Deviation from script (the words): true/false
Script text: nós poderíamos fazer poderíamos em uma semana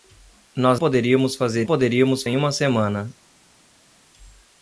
false